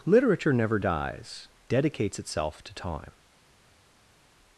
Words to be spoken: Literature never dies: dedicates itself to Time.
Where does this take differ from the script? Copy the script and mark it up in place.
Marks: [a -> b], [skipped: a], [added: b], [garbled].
Literature never dies: dedicates itself to Time.